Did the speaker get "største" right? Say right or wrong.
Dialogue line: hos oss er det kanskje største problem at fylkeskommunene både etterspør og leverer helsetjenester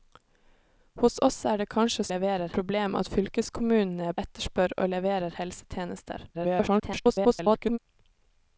wrong